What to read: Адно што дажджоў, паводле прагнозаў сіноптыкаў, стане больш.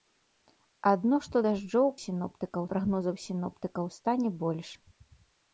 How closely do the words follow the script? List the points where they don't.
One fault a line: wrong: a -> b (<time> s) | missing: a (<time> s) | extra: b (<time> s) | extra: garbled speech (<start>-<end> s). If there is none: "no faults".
wrong: паводле -> сіноптыкаў (2.0 s)